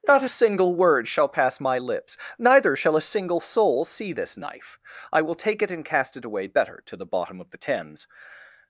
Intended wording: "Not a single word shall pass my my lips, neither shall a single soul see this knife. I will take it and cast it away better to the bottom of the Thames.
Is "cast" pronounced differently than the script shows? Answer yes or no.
no